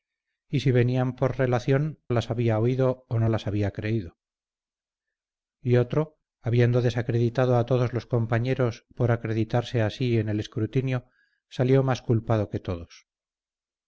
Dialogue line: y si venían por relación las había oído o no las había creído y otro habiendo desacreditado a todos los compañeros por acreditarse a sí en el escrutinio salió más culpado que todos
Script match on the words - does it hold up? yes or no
yes